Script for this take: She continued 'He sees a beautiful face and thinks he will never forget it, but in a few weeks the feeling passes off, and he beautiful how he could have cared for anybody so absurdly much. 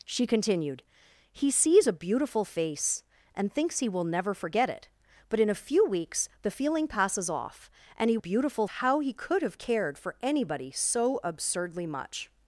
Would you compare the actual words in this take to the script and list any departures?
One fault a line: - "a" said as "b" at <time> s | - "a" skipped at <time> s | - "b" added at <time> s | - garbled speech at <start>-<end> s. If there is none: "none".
none